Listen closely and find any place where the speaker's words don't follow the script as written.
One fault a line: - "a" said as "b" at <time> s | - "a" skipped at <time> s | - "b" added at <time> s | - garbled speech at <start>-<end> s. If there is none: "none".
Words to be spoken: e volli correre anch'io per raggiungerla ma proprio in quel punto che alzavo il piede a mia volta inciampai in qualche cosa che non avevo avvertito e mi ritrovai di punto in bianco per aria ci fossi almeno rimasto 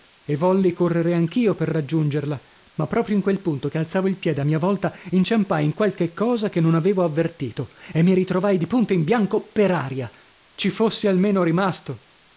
none